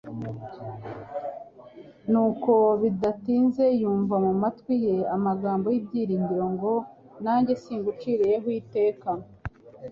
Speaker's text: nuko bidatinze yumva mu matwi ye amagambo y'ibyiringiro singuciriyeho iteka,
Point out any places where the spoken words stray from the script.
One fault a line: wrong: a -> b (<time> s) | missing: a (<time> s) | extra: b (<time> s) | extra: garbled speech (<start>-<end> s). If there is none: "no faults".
extra: ngo Nanjye (6.5 s)